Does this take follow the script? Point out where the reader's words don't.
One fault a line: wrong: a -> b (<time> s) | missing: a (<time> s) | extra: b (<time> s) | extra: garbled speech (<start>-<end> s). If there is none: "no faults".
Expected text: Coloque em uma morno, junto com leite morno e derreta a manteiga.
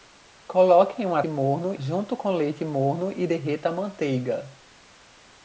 no faults